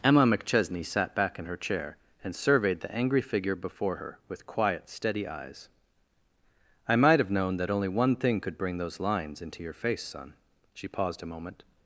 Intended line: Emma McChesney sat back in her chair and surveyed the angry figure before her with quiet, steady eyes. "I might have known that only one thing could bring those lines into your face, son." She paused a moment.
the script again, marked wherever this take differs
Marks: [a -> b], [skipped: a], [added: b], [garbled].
Emma McChesney sat back in her chair and surveyed the angry figure before her with quiet, steady eyes. "I might have known that only one thing could bring those lines into your face, son." She paused a moment.